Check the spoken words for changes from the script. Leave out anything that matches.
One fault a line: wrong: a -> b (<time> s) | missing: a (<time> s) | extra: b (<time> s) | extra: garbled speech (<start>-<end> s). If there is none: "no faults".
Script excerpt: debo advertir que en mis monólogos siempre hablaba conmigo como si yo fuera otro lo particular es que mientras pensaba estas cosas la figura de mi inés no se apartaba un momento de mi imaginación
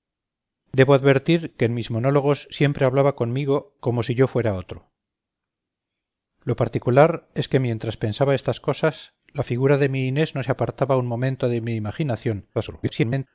extra: garbled speech (12.5-13.3 s)